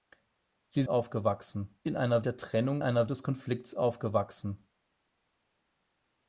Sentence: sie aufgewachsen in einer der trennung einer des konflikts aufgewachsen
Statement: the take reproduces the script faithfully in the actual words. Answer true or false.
true